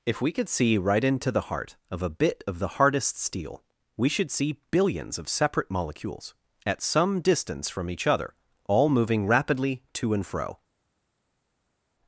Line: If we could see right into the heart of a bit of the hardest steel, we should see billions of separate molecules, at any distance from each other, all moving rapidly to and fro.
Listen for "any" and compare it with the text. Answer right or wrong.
wrong